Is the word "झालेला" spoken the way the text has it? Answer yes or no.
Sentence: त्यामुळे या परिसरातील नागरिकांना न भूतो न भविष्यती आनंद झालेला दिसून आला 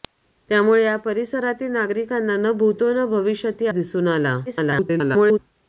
no